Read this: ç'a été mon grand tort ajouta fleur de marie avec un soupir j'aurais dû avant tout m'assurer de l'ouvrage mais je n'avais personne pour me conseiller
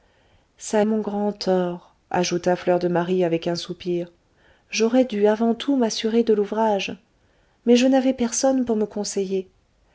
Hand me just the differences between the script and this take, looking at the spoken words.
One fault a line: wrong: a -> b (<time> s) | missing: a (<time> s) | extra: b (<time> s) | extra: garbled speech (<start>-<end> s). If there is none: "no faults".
missing: été (0.8 s)